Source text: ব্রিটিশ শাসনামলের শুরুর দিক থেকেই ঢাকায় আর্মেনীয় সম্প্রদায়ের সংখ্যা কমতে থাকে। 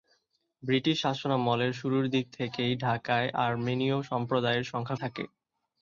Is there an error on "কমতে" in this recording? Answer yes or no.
yes